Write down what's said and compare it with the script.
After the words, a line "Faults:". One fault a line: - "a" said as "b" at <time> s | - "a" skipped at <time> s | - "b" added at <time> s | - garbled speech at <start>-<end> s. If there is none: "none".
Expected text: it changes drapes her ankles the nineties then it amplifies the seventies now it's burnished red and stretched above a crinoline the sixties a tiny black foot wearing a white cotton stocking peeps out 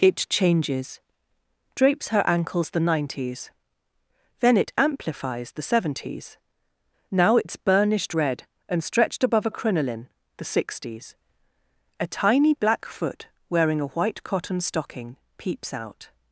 it changes drapes her ankles the nineties then it amplifies the seventies now it's burnished red and stretched above a crinoline the sixties a tiny black foot wearing a white cotton stocking peeps out
Faults:
none